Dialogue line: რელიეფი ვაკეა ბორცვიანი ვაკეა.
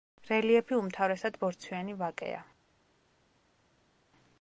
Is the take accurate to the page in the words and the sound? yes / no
no